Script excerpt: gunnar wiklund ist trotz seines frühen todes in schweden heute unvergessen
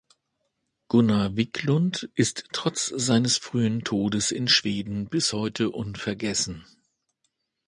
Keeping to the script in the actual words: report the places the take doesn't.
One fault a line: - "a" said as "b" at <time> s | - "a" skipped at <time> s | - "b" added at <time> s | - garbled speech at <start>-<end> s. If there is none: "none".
- "bis" added at 5.0 s